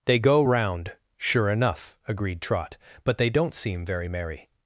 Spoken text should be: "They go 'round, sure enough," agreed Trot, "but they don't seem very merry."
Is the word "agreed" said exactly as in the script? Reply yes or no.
yes